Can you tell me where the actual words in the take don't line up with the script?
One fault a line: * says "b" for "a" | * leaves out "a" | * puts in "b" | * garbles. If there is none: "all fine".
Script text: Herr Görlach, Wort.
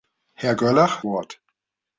all fine